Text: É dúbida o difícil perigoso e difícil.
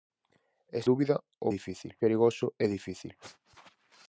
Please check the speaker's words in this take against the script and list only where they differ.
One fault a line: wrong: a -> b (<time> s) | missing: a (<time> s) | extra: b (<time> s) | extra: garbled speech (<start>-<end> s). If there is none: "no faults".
no faults